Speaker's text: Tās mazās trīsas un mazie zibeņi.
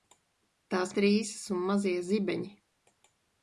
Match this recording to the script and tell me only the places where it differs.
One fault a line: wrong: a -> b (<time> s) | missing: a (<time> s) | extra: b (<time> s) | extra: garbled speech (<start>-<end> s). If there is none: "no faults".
missing: mazās (0.9 s)